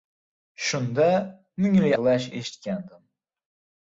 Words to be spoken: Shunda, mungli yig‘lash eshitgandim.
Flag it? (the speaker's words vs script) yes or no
no